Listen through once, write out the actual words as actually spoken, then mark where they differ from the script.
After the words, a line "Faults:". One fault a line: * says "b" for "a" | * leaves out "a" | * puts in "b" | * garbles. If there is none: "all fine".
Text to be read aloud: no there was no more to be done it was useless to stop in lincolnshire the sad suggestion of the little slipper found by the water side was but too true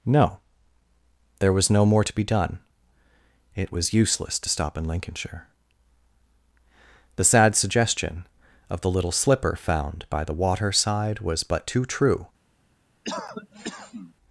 no there was no more to be done it was useless to stop in lincolnshire the sad suggestion of the little slipper found by the water side was but too true
Faults:
all fine